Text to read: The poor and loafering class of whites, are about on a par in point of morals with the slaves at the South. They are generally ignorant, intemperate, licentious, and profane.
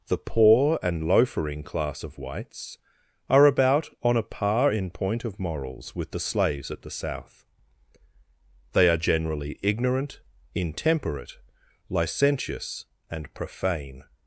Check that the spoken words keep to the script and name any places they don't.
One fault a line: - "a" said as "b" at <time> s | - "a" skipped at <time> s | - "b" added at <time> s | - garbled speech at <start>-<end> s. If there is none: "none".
none